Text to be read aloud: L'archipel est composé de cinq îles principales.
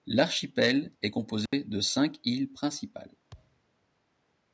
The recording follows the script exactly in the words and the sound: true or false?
false